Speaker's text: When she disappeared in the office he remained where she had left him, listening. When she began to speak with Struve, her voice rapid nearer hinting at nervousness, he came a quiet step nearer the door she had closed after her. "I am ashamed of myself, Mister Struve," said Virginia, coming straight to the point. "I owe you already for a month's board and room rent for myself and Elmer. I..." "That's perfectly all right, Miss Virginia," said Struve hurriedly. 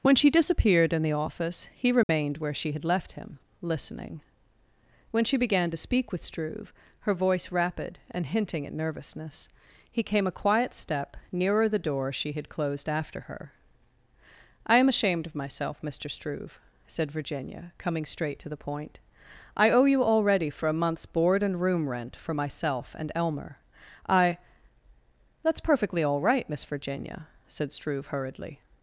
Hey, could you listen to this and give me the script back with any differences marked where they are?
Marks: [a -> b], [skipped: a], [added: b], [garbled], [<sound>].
When she disappeared in the office he remained [dropout] where she had left him, listening. When she began to speak with Struve, her voice rapid [nearer -> and] hinting at nervousness, he came a quiet step nearer the door she had closed after her. "I am ashamed of myself, Mister Struve," said Virginia, coming straight to the point. "I owe you already for a month's board and room rent for myself and Elmer. I..." "That's perfectly all right, Miss Virginia," said Struve hurriedly.